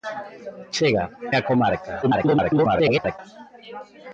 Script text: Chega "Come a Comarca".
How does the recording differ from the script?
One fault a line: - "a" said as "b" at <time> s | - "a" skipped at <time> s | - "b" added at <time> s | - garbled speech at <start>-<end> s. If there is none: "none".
- "Come" skipped at 1.0 s
- garbled speech at 2.0-3.2 s